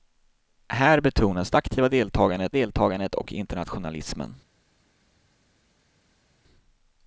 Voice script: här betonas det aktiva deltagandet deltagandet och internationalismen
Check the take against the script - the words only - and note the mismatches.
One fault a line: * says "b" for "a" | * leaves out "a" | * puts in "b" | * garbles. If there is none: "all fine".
all fine